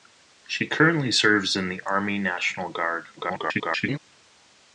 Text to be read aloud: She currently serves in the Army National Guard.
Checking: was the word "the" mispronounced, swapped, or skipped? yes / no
no